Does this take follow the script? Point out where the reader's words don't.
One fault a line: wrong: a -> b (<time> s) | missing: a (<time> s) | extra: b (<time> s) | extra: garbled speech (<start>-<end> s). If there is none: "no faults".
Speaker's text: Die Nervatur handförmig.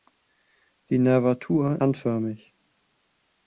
no faults